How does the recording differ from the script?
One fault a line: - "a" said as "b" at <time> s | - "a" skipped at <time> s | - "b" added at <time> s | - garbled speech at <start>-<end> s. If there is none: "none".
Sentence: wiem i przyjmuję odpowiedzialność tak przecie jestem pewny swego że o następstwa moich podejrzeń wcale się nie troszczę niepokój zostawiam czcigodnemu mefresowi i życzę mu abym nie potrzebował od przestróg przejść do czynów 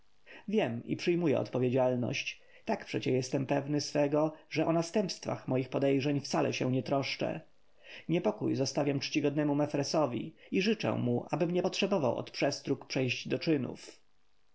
none